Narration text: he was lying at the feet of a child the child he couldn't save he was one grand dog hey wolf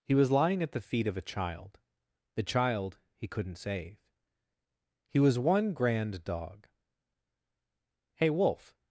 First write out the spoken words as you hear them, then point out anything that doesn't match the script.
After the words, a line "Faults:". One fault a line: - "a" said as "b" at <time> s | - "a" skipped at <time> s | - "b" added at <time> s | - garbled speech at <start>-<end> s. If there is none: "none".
he was lying at the feet of a child the child he couldn't save he was one grand dog hey wolf
Faults:
none